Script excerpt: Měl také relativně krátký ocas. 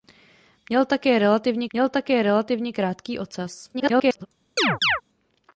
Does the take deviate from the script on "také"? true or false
false